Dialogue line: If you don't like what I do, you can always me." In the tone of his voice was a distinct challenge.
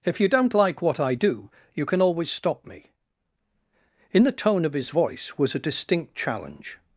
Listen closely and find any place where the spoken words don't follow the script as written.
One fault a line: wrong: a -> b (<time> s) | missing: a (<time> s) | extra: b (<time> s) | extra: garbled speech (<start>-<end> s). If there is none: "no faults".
extra: stop (2.3 s)